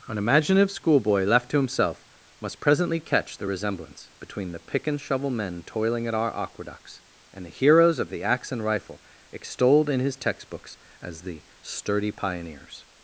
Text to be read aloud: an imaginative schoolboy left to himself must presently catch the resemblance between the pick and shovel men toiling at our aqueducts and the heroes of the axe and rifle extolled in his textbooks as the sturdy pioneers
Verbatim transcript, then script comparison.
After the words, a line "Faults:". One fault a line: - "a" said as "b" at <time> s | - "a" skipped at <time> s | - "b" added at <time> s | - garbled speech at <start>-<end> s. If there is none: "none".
an imaginative schoolboy left to himself must presently catch the resemblance between the pick and shovel men toiling at our aqueducts and the heroes of the axe and rifle extolled in his textbooks as the sturdy pioneers
Faults:
none